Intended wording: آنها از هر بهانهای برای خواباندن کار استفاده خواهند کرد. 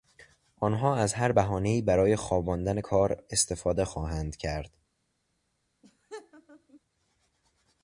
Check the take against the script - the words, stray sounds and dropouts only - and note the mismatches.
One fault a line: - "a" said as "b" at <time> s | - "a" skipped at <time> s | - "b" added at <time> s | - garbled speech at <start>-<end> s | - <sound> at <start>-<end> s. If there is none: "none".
- laugh at 5.8-6.8 s